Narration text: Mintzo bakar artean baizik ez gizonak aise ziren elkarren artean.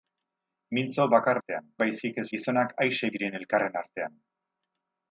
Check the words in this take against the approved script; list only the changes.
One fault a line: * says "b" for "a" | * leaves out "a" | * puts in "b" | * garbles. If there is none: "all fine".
all fine